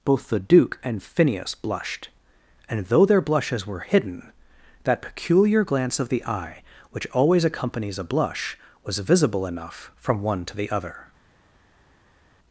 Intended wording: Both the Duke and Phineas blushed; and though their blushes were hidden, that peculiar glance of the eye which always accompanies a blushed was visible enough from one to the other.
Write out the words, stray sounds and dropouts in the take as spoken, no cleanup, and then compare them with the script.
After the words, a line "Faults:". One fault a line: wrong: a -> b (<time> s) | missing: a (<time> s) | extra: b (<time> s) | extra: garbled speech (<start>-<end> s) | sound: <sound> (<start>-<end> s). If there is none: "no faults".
Both the Duke and Phineas blushed; and though their blushes were hidden, that peculiar glance of the eye which always accompanies a blush was visible enough from one to the other.
Faults:
wrong: blushed -> blush (8.0 s)